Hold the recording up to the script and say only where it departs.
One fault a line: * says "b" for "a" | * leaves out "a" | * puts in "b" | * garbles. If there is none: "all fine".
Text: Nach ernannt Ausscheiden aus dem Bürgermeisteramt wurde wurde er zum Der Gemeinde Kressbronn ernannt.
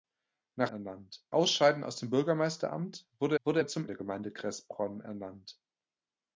all fine